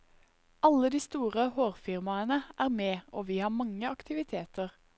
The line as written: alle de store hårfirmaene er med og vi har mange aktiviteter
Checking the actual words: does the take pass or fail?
pass